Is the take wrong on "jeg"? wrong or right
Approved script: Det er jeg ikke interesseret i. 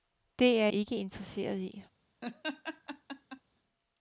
wrong